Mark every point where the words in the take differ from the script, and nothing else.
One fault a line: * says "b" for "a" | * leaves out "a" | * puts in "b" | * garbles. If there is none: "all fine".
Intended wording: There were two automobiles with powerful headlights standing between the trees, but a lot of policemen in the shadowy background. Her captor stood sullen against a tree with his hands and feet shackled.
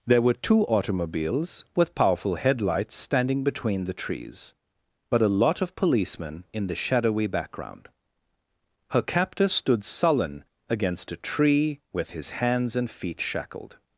all fine